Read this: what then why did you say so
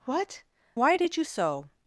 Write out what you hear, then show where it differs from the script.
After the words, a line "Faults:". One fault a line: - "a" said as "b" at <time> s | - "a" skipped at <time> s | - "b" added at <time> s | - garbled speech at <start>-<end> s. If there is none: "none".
what why did you so
Faults:
- "then" skipped at 0.4 s
- "say" skipped at 1.2 s